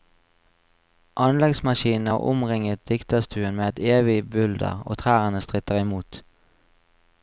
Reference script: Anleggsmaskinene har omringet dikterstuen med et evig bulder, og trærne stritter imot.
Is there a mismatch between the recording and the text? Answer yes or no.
no